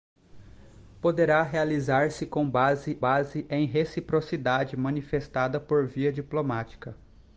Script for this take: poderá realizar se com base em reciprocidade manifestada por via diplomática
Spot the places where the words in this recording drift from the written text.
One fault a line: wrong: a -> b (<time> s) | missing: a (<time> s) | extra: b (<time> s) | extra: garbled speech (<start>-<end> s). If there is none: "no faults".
extra: base (3.0 s)